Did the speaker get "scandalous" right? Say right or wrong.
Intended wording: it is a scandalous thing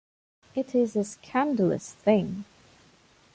right